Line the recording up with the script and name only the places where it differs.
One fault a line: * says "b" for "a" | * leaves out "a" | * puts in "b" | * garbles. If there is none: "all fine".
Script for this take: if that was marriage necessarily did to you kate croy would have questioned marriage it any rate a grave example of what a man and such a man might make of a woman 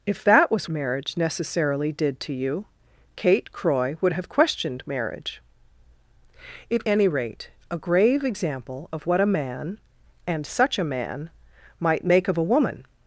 all fine